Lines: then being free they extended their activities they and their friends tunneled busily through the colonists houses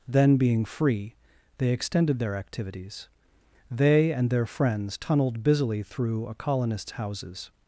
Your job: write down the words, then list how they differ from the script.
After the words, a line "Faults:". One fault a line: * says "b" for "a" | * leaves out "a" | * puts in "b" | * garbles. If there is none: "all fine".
then being free they extended their activities they and their friends tunneled busily through a colonists houses
Faults:
* says "a" for "the"